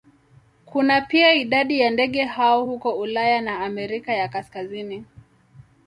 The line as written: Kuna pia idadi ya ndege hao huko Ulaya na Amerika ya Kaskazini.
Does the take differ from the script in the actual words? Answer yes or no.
no